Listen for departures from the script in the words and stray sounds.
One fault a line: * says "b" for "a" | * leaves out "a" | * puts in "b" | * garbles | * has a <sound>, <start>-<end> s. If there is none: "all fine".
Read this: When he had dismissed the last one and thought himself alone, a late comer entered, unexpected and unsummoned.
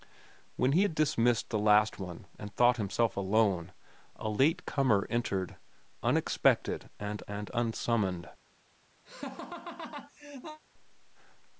* puts in "and"
* has a laugh, 9.0-10.6 s